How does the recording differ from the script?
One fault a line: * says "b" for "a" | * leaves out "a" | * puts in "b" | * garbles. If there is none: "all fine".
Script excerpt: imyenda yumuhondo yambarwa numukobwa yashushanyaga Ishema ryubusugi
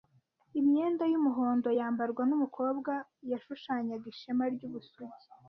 all fine